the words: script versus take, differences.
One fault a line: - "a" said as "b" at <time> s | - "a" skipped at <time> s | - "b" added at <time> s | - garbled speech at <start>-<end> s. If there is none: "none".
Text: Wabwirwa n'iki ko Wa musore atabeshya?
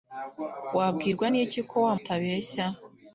- "musore" skipped at 1.9 s